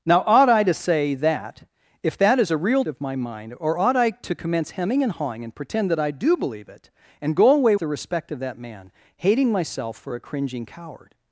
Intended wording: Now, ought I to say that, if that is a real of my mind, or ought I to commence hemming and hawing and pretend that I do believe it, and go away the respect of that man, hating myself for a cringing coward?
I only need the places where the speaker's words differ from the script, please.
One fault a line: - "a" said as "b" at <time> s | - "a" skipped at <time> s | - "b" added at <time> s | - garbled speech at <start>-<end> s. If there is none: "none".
none